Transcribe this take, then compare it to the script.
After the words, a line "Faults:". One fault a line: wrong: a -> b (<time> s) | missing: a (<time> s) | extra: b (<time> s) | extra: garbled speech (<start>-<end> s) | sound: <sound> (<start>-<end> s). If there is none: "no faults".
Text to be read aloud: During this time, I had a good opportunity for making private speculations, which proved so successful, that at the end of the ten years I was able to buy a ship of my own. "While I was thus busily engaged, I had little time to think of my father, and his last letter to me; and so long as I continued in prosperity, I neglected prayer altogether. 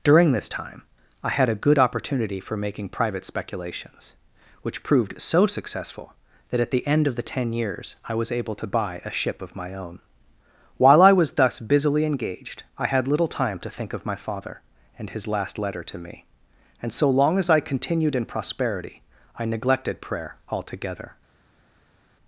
During this time, I had a good opportunity for making private speculations, which proved so successful, that at the end of the ten years I was able to buy a ship of my own. "While I was thus busily engaged, I had little time to think of my father, and his last letter to me; and so long as I continued in prosperity, I neglected prayer altogether.
Faults:
no faults